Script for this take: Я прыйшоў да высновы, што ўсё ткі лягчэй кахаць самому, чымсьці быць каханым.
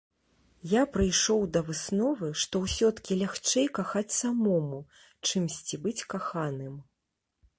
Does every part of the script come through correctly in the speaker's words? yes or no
yes